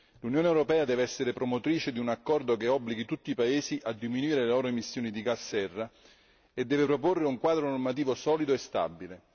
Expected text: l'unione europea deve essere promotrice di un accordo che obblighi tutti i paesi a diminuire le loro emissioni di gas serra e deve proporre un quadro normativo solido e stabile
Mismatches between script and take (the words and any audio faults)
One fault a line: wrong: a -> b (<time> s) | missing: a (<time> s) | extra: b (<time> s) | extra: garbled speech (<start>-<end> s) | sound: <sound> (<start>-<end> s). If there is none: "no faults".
no faults